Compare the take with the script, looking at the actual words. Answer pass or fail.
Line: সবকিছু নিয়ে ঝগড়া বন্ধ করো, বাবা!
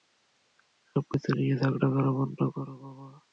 fail